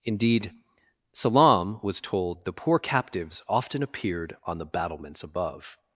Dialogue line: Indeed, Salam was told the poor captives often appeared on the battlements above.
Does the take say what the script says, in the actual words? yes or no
yes